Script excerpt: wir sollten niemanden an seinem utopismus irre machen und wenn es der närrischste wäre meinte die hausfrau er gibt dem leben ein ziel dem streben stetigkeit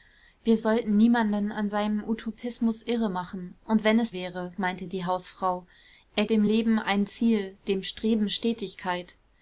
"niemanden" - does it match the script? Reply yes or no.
yes